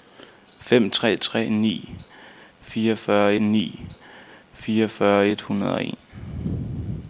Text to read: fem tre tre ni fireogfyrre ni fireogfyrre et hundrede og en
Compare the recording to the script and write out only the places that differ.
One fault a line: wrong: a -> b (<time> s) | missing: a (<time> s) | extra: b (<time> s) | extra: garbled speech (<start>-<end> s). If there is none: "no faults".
no faults